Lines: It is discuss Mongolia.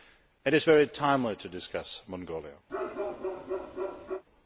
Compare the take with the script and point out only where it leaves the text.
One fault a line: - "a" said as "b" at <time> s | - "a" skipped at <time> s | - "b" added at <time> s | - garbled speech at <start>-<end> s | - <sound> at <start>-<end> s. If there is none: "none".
- "very timely to" added at 0.7 s
- bark at 2.7-4.2 s